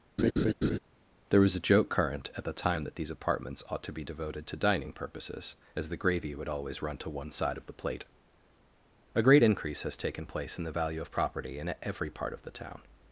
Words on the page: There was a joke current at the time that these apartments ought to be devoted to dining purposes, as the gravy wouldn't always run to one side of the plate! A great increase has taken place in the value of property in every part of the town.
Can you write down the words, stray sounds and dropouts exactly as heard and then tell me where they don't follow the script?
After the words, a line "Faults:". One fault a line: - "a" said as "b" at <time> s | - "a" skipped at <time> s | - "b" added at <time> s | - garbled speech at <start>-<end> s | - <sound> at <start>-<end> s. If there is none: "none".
There was a joke current at the time that these apartments ought to be devoted to dining purposes, as the gravy would always run to one side of the plate! A great increase has taken place in the value of property in every part of the town.
Faults:
- laugh at 0.2-0.8 s
- "wouldn't" said as "would" at 6.4 s